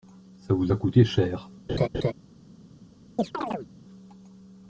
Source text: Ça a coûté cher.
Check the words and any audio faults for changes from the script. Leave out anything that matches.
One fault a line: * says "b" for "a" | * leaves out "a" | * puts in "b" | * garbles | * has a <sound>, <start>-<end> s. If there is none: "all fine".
* puts in "vous"
* has a laugh, 1.7-2.1 s
* has a chirp, 3.2-3.7 s